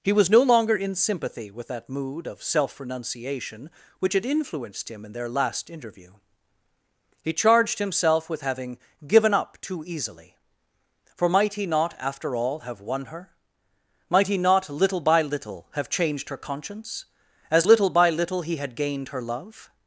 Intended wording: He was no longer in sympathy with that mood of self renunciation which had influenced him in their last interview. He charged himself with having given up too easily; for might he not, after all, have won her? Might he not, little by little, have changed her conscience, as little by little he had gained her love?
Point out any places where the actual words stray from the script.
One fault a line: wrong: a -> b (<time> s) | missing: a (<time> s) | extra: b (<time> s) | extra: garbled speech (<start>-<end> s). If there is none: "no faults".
no faults